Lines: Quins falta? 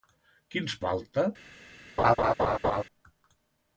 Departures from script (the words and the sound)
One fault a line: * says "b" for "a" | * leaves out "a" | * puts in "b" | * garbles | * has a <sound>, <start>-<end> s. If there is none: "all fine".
* has a laugh, 2.0-2.8 s